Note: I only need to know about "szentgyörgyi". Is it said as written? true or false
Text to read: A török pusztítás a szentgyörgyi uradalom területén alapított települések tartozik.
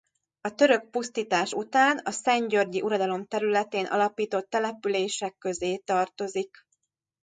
true